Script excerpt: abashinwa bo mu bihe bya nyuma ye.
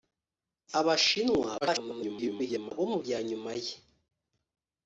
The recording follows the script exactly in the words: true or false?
false